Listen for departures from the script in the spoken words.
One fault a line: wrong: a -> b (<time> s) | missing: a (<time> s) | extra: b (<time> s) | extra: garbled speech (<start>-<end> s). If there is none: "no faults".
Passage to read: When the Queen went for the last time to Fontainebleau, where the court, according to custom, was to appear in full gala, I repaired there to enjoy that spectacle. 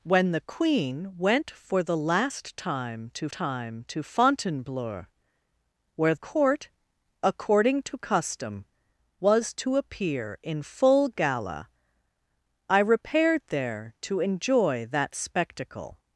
extra: time to (3.3 s)
missing: the (6.2 s)